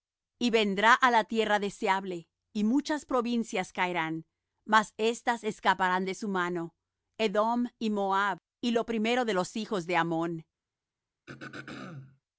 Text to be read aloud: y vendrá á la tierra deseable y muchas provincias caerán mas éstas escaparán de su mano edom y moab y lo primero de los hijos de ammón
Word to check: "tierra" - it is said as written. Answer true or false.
true